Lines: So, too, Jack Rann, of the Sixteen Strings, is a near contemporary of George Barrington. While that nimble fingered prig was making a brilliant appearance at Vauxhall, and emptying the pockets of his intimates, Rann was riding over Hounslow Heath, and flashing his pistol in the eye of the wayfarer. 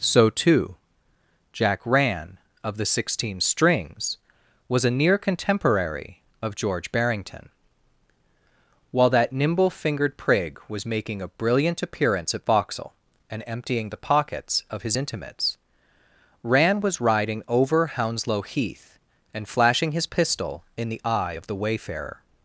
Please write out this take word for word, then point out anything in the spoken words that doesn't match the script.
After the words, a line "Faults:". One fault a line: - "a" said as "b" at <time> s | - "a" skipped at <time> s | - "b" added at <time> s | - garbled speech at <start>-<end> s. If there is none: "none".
So, too, Jack Rann, of the Sixteen Strings, was a near contemporary of George Barrington. While that nimble fingered prig was making a brilliant appearance at Vauxhall, and emptying the pockets of his intimates, Rann was riding over Hounslow Heath, and flashing his pistol in the eye of the wayfarer.
Faults:
- "is" said as "was" at 4.7 s